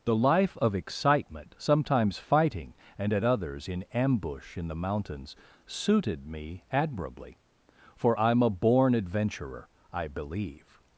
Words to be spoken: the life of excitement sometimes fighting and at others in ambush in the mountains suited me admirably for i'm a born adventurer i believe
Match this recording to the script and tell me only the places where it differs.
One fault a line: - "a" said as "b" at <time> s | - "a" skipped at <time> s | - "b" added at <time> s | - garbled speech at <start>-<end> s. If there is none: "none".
none